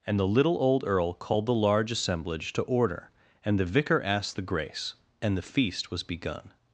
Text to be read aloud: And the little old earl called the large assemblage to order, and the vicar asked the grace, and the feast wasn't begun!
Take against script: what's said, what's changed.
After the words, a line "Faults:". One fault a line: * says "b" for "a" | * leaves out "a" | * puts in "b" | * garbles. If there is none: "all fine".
And the little old earl called the large assemblage to order, and the vicar asked the grace, and the feast was begun!
Faults:
* says "was" for "wasn't"